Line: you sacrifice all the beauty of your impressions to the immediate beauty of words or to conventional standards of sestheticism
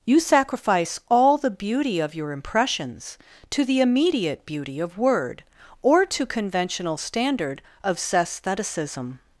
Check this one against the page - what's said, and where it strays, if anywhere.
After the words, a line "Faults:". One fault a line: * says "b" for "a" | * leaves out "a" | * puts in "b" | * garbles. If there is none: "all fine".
you sacrifice all the beauty of your impressions to the immediate beauty of word or to conventional standard of sestheticism
Faults:
* says "word" for "words"
* says "standard" for "standards"